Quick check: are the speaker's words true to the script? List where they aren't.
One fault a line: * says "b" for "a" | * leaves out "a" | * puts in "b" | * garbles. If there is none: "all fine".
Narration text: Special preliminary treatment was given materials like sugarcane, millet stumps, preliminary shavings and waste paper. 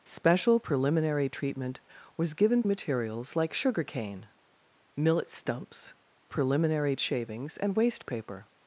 all fine